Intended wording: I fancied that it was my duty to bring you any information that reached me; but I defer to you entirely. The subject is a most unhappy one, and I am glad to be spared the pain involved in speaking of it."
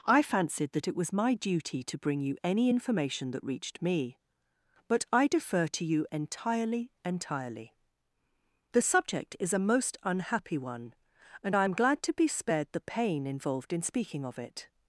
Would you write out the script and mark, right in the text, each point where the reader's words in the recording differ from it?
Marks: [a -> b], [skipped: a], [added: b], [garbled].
I fancied that it was my duty to bring you any information that reached me; but I defer to you entirely. [added: entirely] The subject is a most unhappy one, and I am glad to be spared the pain involved in speaking of it."